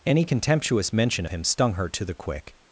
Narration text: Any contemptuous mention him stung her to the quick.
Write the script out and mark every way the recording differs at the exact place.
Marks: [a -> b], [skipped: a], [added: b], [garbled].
Any contemptuous mention him stung her to the quick.